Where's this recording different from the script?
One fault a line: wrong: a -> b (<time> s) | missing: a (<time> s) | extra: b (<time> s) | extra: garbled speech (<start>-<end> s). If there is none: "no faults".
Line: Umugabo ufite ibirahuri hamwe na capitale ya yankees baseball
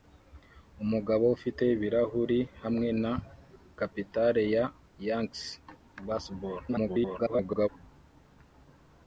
extra: garbled speech (6.7-7.7 s)